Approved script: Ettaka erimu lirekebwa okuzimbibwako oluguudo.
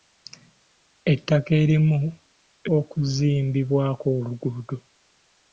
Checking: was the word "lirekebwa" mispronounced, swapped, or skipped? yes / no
yes